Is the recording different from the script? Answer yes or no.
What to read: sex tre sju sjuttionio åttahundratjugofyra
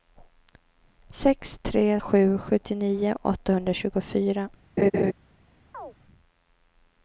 no